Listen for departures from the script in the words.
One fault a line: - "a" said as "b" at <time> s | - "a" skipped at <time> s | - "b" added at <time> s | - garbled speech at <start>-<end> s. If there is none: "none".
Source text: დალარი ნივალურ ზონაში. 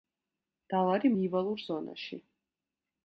none